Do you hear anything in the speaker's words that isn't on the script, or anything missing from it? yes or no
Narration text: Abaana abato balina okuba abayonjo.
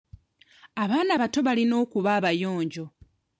no